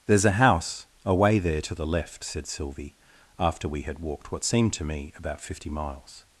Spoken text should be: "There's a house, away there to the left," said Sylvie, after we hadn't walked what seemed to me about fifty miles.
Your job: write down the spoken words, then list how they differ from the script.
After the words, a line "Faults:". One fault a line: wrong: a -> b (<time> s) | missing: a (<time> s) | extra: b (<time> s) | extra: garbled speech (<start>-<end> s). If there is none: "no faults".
"There's a house, away there to the left," said Sylvie, after we had walked what seemed to me about fifty miles.
Faults:
wrong: hadn't -> had (3.8 s)